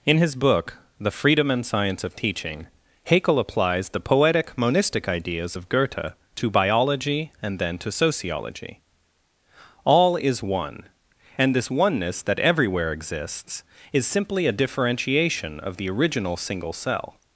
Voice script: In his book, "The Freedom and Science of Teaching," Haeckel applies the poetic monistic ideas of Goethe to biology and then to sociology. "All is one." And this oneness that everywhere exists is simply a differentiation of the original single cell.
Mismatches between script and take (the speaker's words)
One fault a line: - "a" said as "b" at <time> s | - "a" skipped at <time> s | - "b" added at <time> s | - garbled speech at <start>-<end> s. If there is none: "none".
none